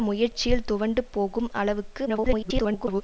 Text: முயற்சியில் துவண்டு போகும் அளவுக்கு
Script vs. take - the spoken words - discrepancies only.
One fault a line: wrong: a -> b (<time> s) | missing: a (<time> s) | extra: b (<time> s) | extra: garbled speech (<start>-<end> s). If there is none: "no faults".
extra: garbled speech (2.1-3.0 s)